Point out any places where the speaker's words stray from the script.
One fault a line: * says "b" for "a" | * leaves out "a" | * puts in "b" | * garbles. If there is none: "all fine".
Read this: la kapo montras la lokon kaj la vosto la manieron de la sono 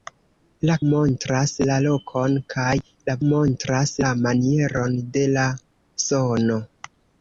* leaves out "kapo"
* says "montras" for "vosto"